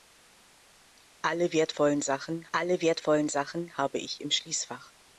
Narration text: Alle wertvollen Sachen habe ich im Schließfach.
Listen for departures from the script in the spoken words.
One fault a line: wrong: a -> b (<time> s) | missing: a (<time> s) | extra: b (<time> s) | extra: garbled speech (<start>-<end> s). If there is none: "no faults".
extra: alle wertvollen Sachen (2.5 s)